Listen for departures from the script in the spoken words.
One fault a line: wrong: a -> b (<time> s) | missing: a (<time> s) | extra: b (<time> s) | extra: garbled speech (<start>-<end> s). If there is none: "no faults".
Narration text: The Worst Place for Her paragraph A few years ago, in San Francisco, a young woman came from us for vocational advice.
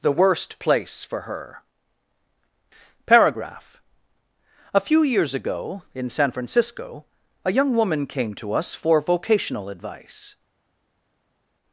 wrong: from -> to (8.4 s)